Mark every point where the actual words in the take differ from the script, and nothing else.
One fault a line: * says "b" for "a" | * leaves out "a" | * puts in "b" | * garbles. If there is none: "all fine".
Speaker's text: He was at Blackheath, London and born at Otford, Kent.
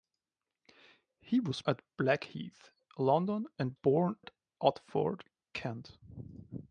all fine